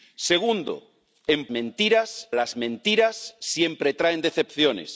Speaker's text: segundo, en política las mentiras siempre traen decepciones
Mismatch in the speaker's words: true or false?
true